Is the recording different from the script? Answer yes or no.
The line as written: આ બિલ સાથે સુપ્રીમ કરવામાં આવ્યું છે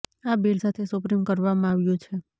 no